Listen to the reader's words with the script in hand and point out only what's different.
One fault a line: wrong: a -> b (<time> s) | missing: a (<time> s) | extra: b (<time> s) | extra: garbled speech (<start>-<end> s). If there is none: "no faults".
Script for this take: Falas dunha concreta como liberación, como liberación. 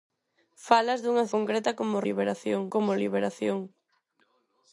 no faults